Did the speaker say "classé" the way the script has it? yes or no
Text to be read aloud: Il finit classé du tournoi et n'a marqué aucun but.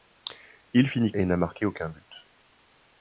no